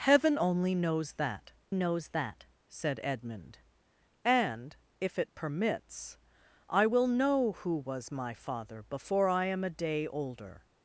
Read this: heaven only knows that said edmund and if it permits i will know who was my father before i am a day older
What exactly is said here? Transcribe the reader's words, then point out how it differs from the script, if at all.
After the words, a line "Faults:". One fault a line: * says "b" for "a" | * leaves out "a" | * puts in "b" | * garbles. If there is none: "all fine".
heaven only knows that knows that said edmund and if it permits i will know who was my father before i am a day older
Faults:
* puts in "knows that"